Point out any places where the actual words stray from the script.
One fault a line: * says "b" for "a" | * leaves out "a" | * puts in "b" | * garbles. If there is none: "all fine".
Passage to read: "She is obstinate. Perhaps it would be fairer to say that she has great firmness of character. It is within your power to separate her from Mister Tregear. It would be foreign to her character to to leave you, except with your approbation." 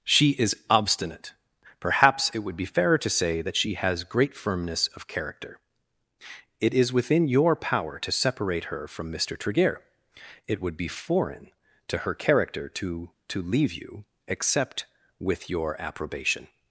all fine